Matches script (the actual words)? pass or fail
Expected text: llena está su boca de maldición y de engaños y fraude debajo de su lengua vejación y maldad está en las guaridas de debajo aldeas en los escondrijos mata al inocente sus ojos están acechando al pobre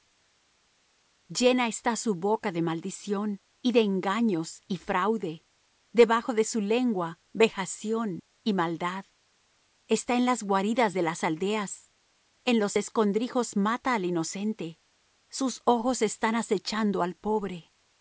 fail